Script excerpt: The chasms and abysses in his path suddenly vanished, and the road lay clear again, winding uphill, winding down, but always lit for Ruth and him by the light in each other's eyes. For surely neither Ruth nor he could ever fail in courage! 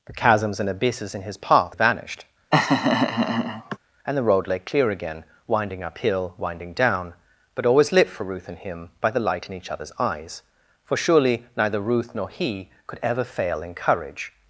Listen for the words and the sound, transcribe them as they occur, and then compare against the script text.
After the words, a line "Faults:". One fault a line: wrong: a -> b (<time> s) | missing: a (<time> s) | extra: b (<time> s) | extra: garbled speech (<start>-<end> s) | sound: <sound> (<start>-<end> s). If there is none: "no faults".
The chasms and abysses in his path vanished, and the road lay clear again, winding uphill, winding down, but always lit for Ruth and him by the light in each other's eyes. For surely neither Ruth nor he could ever fail in courage!
Faults:
missing: suddenly (1.8 s)
sound: laugh (2.5-3.8 s)